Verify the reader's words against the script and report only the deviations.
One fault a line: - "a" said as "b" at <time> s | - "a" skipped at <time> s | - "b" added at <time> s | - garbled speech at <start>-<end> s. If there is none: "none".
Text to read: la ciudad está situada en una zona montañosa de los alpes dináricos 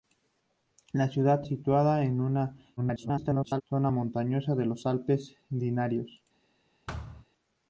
- "está" skipped at 1.4 s
- garbled speech at 2.8-3.6 s